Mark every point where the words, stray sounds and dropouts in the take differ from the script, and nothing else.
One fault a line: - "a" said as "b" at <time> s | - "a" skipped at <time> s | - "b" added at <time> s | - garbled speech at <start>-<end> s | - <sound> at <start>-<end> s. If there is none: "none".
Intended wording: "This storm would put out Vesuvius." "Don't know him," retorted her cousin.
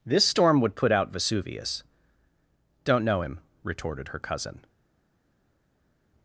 none